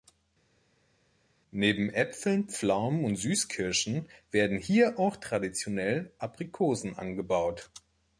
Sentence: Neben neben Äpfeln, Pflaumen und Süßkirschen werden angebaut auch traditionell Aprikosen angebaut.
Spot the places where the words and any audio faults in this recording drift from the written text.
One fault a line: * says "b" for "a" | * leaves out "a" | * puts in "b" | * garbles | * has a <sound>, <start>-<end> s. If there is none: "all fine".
* leaves out "neben"
* says "hier" for "angebaut"